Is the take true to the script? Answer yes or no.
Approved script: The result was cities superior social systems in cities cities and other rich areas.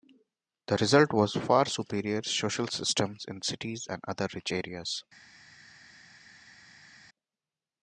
no